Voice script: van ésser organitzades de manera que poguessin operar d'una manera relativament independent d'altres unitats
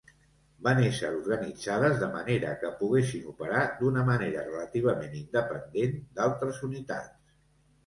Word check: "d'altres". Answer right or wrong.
right